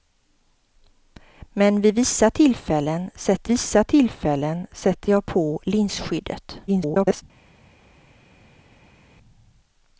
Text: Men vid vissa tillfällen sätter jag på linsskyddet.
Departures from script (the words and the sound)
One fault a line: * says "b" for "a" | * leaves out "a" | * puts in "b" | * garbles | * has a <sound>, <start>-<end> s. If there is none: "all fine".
* puts in "vissa tillfällen sätter"
* garbles